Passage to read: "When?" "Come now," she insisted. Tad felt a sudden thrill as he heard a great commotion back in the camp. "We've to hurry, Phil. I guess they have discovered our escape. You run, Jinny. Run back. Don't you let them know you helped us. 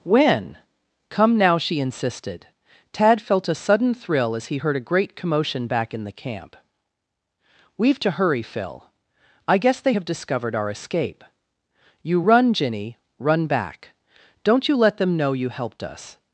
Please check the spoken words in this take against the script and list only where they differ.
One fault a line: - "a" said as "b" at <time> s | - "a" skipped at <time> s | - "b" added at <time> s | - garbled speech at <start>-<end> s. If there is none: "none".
none